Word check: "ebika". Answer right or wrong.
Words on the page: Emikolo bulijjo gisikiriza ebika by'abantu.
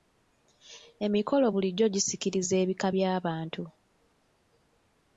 right